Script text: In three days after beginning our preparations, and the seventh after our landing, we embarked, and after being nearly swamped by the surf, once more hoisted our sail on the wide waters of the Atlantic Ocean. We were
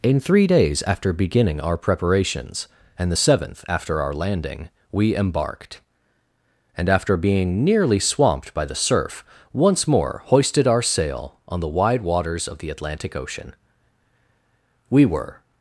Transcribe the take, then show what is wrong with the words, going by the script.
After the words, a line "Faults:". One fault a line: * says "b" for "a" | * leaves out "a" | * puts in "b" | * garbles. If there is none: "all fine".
In three days after beginning our preparations, and the seventh after our landing, we embarked, and after being nearly swamped by the surf, once more hoisted our sail on the wide waters of the Atlantic Ocean. We were
Faults:
all fine